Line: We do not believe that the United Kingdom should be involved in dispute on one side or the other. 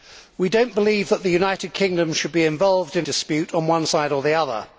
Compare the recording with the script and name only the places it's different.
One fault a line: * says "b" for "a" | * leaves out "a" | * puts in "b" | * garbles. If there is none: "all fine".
all fine